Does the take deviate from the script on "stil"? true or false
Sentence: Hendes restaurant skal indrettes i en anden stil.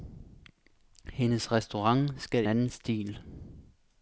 false